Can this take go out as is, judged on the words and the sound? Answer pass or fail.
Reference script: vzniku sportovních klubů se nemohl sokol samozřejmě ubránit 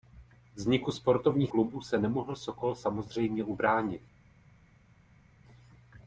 pass